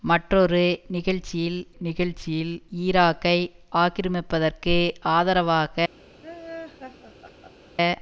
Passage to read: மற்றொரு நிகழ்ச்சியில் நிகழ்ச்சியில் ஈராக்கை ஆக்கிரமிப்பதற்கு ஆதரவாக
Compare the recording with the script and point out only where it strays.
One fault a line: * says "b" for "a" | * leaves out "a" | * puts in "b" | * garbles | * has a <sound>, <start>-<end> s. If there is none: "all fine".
* has a laugh, 6.2-7.7 s